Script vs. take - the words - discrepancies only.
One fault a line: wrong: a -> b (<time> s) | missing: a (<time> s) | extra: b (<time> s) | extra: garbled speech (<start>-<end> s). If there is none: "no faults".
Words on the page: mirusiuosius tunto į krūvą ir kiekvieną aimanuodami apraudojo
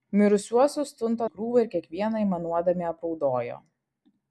no faults